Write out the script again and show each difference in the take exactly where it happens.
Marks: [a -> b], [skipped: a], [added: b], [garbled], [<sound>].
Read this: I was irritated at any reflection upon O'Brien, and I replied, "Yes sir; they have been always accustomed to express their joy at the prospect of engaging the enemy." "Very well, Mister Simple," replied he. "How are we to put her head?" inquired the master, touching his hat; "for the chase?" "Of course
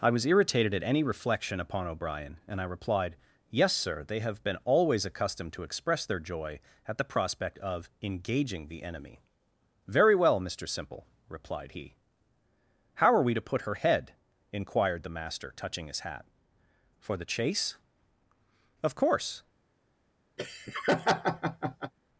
I was irritated at any reflection upon O'Brien, and I replied, "Yes sir; they have been always accustomed to express their joy at the prospect of engaging the enemy." "Very well, Mister Simple," replied he. "How are we to put her head?" inquired the master, touching his hat; "for the chase?" "Of course [laugh]